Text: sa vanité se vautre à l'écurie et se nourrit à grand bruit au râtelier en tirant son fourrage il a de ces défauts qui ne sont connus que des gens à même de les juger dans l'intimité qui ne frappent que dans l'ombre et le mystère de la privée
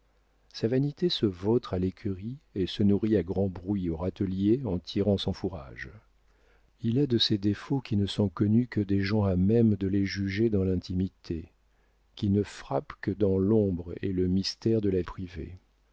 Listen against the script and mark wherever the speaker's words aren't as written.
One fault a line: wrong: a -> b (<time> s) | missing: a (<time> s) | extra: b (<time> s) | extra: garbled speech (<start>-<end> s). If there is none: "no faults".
no faults